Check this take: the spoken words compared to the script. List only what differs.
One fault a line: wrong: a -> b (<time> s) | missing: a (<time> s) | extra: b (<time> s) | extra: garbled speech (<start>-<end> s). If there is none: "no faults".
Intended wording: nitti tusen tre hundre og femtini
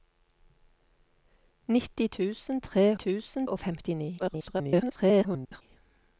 wrong: hundre -> tusen (2.9 s)
extra: garbled speech (4.2-5.6 s)